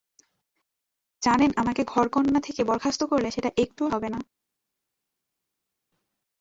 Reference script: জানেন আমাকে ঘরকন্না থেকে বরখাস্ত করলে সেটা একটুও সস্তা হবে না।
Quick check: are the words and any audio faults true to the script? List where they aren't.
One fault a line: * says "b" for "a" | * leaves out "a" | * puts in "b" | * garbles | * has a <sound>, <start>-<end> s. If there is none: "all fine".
* leaves out "সস্তা"